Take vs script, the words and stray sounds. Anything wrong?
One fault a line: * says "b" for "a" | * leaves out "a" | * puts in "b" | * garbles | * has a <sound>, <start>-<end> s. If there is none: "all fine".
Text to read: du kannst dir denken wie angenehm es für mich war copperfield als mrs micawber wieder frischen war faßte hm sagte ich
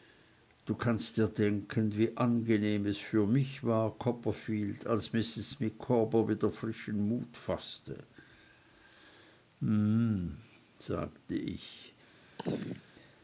* says "mut" for "war"
* has a throat clearing, 12.4-12.8 s